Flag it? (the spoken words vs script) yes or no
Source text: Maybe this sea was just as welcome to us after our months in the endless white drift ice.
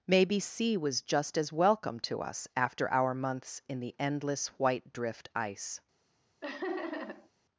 yes